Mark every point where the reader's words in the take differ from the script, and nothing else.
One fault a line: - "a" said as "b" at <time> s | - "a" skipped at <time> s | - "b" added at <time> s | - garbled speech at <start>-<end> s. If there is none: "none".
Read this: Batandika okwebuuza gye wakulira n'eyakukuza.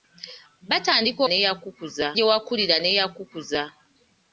- "okwebuuza" said as "n'eyakukuza" at 1.3 s